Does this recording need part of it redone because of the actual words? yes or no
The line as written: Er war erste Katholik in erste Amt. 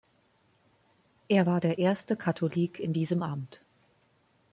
yes